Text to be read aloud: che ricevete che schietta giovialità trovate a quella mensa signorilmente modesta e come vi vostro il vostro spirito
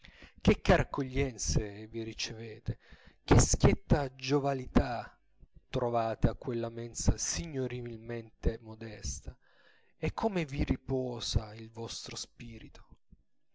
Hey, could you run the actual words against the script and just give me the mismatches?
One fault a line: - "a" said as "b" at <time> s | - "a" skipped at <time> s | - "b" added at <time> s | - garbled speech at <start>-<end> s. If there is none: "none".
- "care accoglienze vi" added at 0.6 s
- "vostro" said as "riposa" at 10.6 s